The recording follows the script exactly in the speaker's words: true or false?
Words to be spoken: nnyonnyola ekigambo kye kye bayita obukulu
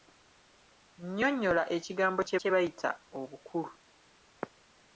true